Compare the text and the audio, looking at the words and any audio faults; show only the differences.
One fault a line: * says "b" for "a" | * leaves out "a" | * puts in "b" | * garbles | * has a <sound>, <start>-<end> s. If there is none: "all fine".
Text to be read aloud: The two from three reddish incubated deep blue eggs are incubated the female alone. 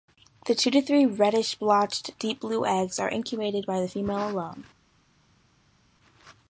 * says "to" for "from"
* says "blotched" for "incubated"
* puts in "by"